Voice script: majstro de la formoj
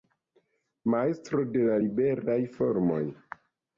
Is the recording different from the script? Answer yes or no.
yes